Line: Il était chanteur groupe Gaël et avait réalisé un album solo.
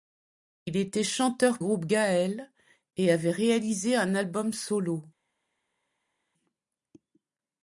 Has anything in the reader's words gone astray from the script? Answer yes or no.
no